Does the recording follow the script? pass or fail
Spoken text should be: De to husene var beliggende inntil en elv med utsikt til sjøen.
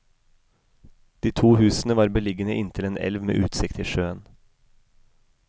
pass